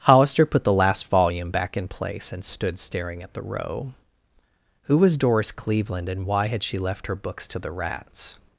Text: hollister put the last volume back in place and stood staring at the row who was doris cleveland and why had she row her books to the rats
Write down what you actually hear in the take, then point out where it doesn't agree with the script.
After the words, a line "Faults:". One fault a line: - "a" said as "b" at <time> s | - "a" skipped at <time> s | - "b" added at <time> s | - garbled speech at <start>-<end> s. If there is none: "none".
hollister put the last volume back in place and stood staring at the row who was doris cleveland and why had she left her books to the rats
Faults:
- "row" said as "left" at 6.8 s